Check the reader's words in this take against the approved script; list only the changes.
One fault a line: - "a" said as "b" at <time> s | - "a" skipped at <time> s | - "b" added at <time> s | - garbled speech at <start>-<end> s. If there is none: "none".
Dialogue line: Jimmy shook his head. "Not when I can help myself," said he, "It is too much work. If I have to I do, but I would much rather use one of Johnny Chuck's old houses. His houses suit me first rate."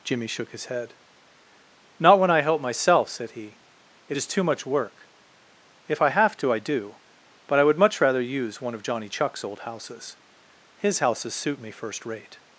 - "can" skipped at 2.4 s